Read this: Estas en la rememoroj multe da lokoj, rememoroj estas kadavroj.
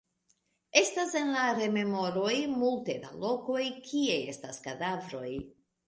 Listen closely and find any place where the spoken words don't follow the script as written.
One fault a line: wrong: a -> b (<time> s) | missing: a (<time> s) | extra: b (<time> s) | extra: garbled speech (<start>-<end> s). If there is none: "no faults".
wrong: rememoroj -> kie (3.9 s)